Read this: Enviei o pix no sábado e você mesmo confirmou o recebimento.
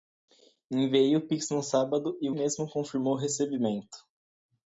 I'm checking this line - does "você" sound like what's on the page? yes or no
no